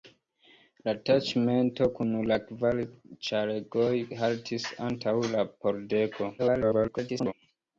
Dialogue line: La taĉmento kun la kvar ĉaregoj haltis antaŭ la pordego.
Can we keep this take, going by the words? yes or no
no